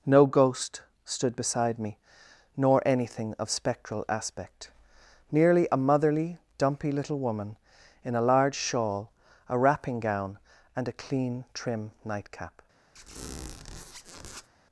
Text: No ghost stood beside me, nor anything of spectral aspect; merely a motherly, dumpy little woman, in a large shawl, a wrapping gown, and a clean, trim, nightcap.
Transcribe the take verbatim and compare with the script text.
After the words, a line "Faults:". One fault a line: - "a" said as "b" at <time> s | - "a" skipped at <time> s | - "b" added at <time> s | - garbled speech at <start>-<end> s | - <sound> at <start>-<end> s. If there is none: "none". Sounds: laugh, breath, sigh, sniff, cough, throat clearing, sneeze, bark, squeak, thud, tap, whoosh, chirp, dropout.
No ghost stood beside me, nor anything of spectral aspect; merely a motherly, dumpy little woman, in a large shawl, a wrapping gown, and a clean, trim, nightcap.
Faults:
- squeak at 12.9-14.5 s